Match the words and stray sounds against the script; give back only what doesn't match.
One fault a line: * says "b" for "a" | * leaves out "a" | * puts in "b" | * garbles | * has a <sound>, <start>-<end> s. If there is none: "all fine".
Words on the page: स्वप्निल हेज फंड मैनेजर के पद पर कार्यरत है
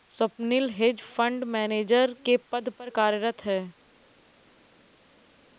all fine